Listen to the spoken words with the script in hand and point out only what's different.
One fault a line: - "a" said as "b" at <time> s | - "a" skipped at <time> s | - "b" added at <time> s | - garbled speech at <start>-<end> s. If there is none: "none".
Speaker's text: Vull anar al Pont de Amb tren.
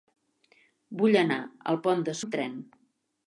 none